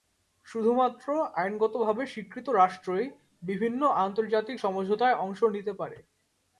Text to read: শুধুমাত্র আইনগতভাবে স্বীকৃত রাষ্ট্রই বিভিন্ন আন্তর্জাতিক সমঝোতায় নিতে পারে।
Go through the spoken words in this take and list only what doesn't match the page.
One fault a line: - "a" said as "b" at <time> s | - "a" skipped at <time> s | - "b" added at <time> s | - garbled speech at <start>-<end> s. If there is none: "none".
- "অংশ" added at 5.2 s